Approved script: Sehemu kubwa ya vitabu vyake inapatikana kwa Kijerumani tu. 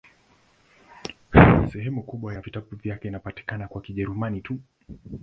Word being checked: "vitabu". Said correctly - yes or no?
yes